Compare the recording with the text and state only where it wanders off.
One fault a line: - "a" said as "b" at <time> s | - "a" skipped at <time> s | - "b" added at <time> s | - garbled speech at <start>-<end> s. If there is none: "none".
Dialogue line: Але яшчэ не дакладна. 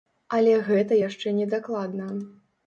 - "гэта" added at 0.7 s